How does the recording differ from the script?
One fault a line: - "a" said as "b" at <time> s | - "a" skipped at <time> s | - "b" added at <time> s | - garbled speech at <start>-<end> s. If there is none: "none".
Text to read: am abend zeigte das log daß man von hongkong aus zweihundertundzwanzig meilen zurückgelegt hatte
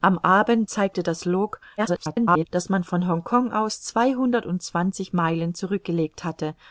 - garbled speech at 1.8-2.5 s